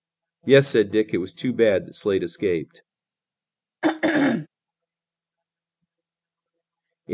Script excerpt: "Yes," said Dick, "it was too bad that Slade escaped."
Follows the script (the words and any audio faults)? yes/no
no